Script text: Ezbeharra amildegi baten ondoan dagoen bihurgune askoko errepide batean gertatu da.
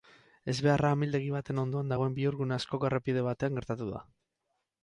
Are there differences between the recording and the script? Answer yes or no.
no